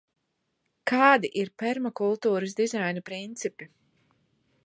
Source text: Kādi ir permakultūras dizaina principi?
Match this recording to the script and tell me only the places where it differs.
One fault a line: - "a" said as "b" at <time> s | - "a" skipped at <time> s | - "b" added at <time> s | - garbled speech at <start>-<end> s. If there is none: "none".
none